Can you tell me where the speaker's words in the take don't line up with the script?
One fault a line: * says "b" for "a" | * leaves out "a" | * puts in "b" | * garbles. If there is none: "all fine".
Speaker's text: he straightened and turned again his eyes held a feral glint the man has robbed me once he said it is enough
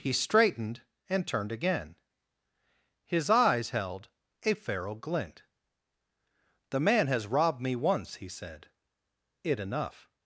* leaves out "is"